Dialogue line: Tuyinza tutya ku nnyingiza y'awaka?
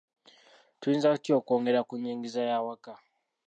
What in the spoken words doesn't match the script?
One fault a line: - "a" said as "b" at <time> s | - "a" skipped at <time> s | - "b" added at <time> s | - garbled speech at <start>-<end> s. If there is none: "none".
- "okwongera" added at 1.4 s